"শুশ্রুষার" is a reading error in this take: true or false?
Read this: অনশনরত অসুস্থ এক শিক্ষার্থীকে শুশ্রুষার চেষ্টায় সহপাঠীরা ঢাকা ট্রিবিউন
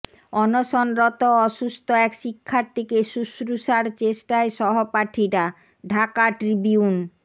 false